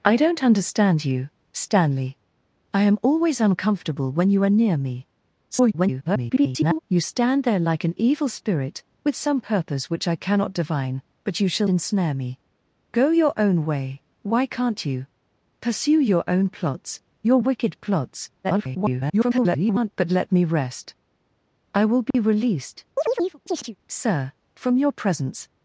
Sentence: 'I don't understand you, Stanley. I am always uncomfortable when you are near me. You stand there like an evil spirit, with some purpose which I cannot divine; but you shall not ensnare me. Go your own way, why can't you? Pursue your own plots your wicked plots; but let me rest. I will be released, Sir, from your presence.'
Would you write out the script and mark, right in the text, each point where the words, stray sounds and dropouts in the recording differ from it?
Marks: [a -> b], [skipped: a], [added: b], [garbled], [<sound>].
'I don't understand you, Stanley. I am always uncomfortable when you are near me. [garbled] You stand there like an evil spirit, with some purpose which I cannot divine; but you shall [skipped: not] ensnare me. Go your own way, why can't you? Pursue your own plots your wicked plots; [garbled] but let me rest. I will be [dropout] released, [chirp] Sir, from your presence.'